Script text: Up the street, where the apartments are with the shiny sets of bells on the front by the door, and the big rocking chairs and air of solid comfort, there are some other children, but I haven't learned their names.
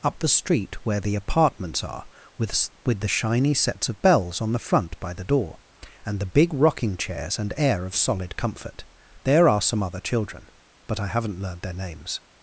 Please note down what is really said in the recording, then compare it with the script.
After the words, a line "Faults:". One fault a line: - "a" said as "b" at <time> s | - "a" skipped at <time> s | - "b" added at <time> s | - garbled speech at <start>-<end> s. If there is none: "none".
Up the street, where the apartments are with with the shiny sets of bells on the front by the door, and the big rocking chairs and air of solid comfort, there are some other children, but I haven't learned their names.
Faults:
- "with" added at 2.8 s